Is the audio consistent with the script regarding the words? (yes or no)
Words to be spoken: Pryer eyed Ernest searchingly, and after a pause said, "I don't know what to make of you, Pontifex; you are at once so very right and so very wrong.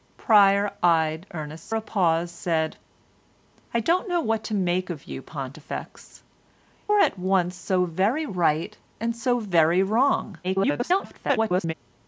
no